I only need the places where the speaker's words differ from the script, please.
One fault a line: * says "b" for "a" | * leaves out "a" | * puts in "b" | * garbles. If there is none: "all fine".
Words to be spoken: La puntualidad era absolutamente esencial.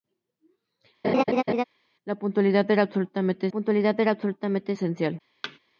* puts in "puntualidad era absolutamente"